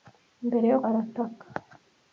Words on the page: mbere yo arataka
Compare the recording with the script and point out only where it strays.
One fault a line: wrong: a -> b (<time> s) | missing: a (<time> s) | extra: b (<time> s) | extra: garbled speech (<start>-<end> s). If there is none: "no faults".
no faults